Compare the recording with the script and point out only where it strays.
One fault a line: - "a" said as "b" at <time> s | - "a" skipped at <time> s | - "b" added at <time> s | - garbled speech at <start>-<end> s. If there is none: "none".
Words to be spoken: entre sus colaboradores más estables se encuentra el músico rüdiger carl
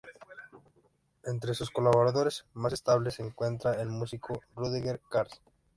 none